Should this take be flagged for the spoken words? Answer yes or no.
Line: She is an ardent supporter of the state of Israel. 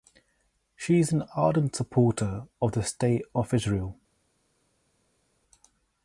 no